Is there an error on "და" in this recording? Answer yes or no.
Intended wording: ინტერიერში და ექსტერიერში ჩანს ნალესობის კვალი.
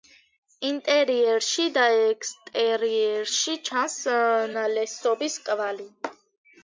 no